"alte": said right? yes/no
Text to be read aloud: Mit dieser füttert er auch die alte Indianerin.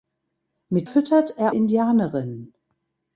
no